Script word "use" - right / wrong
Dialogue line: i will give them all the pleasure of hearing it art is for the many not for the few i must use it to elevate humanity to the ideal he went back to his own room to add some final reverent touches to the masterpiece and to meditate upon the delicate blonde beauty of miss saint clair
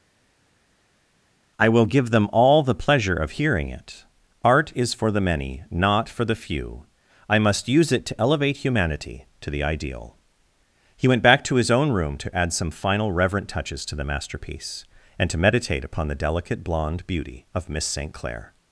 right